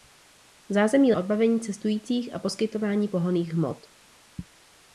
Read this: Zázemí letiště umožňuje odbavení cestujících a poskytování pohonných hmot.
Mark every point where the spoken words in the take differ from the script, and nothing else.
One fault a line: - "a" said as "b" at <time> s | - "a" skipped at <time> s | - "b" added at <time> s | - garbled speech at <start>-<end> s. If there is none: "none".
- "letiště umožňuje" skipped at 1.1 s